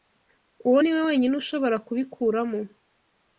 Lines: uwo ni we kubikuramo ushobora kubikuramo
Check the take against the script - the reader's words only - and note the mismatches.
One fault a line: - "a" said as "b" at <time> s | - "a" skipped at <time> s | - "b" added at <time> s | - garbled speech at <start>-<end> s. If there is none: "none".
- "kubikuramo" said as "wenyine" at 1.1 s